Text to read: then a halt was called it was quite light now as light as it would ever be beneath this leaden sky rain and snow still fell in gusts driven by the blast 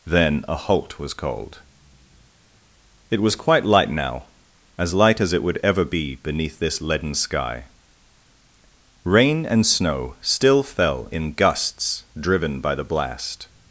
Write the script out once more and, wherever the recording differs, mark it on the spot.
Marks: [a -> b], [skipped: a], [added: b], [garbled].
then a halt was called it was quite light now as light as it would ever be beneath this leaden sky rain and snow still fell in gusts driven by the blast